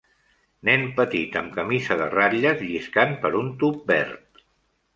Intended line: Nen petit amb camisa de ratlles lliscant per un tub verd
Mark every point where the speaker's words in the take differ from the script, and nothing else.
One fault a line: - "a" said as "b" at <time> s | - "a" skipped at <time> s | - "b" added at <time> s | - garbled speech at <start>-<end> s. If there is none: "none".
none